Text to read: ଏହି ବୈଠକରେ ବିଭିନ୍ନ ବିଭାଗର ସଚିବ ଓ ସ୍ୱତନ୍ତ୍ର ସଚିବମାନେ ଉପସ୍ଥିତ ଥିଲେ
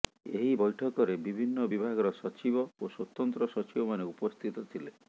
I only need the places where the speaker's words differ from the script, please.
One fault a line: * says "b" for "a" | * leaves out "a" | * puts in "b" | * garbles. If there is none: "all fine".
all fine